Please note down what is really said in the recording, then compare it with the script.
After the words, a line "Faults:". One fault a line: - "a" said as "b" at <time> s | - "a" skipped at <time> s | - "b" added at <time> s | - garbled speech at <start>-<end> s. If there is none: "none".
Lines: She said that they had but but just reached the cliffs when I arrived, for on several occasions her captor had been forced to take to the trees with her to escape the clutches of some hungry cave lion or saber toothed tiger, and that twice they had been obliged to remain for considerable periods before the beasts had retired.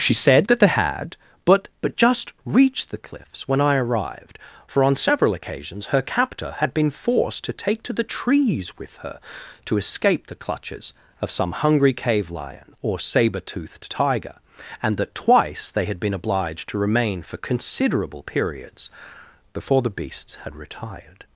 She said that they had but but just reached the cliffs when I arrived, for on several occasions her captor had been forced to take to the trees with her to escape the clutches of some hungry cave lion or saber toothed tiger, and that twice they had been obliged to remain for considerable periods before the beasts had retired.
Faults:
none